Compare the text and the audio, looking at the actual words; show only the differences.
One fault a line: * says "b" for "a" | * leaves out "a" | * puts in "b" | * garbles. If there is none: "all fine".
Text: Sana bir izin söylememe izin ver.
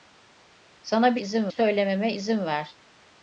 all fine